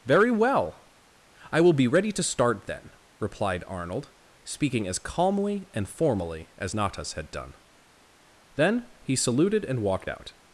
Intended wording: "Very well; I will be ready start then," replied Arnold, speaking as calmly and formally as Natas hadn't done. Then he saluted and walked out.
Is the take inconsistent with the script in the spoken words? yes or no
yes